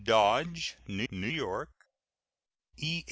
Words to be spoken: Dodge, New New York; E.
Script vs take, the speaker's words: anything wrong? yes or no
no